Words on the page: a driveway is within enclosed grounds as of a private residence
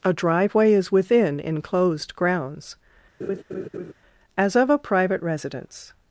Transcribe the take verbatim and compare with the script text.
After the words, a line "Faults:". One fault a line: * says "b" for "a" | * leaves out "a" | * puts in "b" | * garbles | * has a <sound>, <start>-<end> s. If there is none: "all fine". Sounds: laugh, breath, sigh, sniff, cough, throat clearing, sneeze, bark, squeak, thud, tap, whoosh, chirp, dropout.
a driveway is within enclosed grounds as of a private residence
Faults:
* has a laugh, 3.2-3.9 s